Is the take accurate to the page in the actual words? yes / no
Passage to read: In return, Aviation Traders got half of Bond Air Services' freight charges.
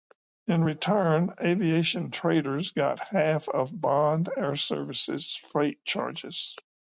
yes